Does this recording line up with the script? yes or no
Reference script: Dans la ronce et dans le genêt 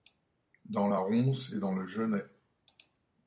yes